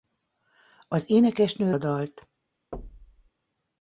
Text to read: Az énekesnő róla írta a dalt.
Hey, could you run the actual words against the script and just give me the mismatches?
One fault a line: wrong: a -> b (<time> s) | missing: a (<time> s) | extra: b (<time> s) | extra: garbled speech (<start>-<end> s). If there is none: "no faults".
missing: róla írta (1.7 s)